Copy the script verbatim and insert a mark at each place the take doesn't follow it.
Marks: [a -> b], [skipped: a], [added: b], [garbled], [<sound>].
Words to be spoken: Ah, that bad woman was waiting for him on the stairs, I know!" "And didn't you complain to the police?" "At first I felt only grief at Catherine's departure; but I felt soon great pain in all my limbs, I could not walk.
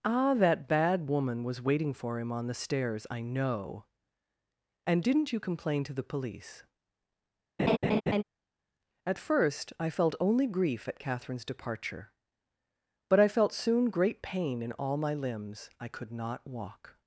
Ah, that bad woman was waiting for him on the stairs, I know!" "And didn't you complain to the police?" [laugh] "At first I felt only grief at Catherine's departure; but I felt soon great pain in all my limbs, I could not walk.